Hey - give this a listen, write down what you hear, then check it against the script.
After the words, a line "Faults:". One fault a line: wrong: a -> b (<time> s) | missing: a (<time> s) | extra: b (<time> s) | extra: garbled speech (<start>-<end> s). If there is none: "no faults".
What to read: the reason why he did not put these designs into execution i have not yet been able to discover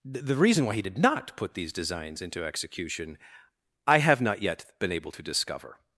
the reason why he did not put these designs into execution i have not yet been able to discover
Faults:
no faults